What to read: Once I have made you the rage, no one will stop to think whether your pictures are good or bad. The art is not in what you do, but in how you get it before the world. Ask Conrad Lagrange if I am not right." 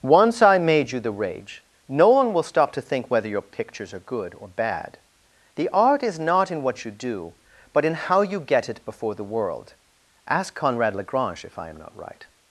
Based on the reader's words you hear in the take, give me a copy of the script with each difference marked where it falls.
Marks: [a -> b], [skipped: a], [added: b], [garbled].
Once I [skipped: have] made you the rage, no one will stop to think whether your pictures are good or bad. The art is not in what you do, but in how you get it before the world. Ask Conrad Lagrange if I am not right."